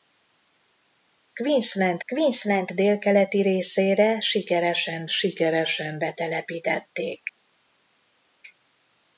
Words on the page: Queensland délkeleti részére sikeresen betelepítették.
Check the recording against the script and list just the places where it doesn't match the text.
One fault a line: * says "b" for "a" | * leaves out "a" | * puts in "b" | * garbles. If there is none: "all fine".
* puts in "queensland"
* puts in "sikeresen"